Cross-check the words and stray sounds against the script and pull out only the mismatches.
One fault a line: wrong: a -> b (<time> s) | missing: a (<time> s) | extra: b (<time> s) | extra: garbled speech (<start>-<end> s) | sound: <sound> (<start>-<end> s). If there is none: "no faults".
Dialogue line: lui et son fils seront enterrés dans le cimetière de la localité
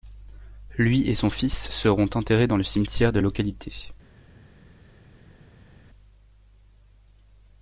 missing: la (3.2 s)